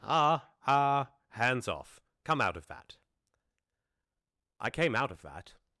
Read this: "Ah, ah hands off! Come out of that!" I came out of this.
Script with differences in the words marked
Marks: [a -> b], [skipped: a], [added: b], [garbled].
"Ah, ah hands off! Come out of that!" I came out of [this. -> that]